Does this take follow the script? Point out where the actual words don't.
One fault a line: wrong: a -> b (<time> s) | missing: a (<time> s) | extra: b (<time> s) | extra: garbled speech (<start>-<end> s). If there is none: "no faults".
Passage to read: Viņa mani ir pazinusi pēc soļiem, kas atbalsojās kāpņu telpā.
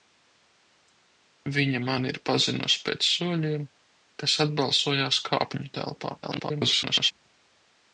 extra: garbled speech (6.2-7.1 s)